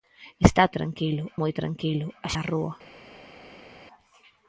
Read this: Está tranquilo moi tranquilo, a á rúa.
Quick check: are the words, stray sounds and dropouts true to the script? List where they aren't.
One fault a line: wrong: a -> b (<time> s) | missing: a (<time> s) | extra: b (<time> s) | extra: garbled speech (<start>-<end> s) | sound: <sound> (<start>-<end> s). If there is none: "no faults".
no faults